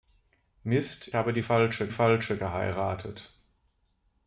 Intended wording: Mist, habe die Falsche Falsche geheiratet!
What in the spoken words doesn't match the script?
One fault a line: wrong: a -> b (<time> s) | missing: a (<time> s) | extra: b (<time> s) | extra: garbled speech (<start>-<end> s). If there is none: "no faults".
no faults